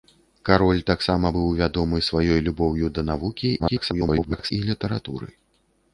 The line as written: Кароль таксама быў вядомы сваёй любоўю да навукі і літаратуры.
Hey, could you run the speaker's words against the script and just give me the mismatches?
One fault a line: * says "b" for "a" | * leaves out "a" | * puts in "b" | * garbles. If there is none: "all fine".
* garbles